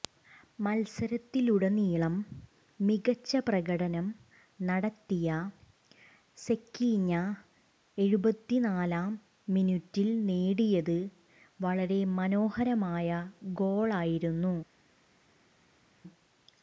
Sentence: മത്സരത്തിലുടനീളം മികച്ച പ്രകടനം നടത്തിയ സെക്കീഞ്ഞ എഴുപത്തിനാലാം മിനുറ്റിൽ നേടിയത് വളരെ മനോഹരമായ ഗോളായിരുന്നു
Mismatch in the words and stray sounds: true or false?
false